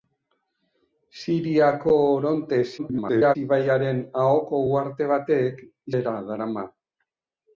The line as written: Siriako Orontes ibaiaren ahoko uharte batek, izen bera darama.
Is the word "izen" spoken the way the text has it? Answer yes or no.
no